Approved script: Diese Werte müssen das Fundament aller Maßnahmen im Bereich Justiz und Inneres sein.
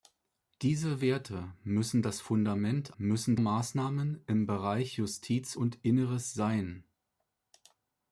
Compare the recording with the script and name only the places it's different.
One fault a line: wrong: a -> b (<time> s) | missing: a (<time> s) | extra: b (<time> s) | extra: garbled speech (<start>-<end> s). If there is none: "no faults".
wrong: aller -> müssen (3.0 s)